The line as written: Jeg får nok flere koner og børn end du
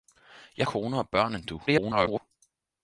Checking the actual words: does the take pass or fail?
fail